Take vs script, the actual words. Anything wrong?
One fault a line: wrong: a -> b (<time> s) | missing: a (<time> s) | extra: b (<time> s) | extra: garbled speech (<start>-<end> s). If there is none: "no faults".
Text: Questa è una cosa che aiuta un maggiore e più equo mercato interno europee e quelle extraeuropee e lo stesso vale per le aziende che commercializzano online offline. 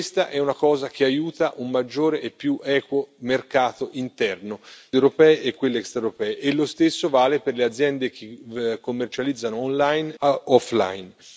no faults